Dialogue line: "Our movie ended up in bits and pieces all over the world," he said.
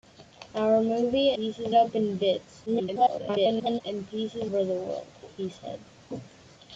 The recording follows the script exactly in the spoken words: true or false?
false